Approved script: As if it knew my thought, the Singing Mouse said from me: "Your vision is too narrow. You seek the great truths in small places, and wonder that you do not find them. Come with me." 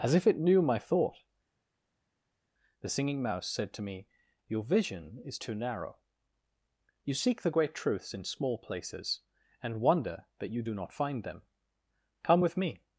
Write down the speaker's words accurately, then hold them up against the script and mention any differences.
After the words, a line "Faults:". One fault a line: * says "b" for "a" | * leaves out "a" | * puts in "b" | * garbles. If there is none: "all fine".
As if it knew my thought, the Singing Mouse said to me: "Your vision is too narrow. You seek the great truths in small places, and wonder that you do not find them. Come with me."
Faults:
* says "to" for "from"